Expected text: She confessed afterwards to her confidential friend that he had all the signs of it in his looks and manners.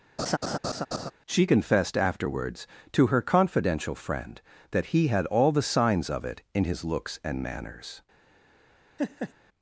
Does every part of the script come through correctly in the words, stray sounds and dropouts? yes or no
no